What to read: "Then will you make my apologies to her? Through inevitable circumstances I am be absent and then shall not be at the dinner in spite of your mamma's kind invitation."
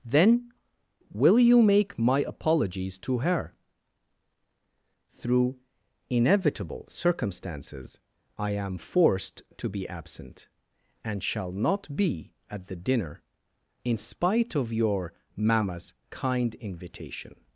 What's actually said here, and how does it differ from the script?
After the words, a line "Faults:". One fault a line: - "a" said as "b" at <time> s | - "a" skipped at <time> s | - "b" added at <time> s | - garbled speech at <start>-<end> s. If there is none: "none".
"Then will you make my apologies to her? Through inevitable circumstances I am forced to be absent and shall not be at the dinner in spite of your mamma's kind invitation."
Faults:
- "forced to" added at 8.8 s
- "then" skipped at 11.2 s